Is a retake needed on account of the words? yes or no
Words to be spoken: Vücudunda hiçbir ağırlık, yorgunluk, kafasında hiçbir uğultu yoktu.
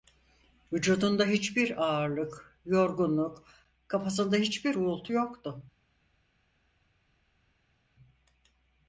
no